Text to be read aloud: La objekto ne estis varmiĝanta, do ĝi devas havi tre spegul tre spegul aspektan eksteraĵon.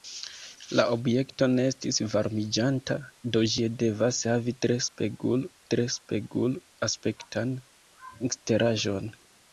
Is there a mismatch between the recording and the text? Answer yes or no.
no